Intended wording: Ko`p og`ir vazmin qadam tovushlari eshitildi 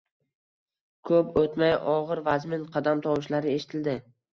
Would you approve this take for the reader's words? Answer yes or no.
no